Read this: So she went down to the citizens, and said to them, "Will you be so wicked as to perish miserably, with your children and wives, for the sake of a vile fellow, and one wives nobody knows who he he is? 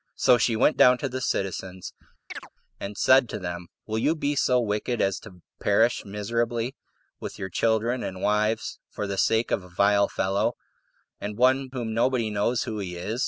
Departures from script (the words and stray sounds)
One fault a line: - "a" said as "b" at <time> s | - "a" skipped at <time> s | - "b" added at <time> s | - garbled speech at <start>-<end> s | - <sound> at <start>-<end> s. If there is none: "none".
- chirp at 2.3-2.5 s
- "wives" said as "whom" at 11.7 s
- "he" skipped at 13.0 s